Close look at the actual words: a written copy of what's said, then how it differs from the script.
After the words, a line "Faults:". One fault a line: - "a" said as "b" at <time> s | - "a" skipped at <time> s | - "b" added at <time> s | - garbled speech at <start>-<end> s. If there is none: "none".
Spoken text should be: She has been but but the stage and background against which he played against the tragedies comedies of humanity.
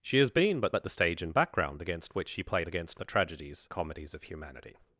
She has been but but the stage and background against which he played against the tragedies comedies of humanity.
Faults:
none